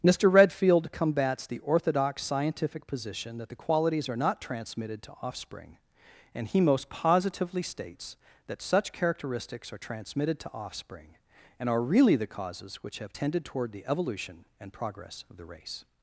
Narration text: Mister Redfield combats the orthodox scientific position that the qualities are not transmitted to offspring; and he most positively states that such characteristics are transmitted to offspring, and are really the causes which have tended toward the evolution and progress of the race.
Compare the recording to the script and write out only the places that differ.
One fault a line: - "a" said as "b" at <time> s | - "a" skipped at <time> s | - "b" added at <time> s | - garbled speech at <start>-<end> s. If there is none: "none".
none